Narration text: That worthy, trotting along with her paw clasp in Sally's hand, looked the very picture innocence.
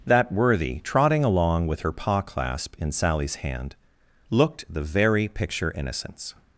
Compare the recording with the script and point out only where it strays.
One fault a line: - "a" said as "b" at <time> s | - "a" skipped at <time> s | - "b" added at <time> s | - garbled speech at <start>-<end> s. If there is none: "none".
none